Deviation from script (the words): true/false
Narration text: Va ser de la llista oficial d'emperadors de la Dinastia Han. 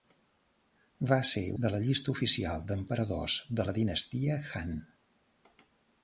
false